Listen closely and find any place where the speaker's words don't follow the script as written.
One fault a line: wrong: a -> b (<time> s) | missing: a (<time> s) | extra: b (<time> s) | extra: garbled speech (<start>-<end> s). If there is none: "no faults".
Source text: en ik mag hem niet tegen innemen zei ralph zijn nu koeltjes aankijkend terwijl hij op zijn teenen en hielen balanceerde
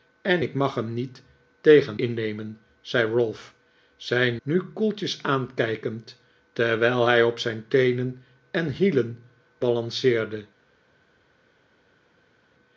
no faults